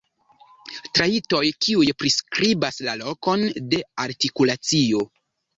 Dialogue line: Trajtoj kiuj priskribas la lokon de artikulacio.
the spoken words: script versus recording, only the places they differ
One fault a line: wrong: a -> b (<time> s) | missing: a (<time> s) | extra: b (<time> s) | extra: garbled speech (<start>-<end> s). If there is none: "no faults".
no faults